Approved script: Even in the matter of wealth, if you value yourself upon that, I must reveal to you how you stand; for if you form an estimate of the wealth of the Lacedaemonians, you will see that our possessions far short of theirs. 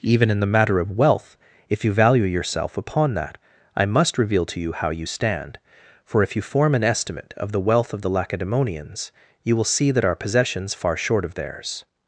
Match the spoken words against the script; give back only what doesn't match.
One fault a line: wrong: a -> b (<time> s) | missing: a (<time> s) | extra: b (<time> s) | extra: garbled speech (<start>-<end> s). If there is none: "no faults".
no faults